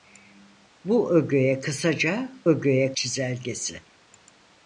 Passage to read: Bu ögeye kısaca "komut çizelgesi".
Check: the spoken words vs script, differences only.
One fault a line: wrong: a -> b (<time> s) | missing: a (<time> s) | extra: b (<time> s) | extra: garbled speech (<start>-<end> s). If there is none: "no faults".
wrong: komut -> ögeye (2.5 s)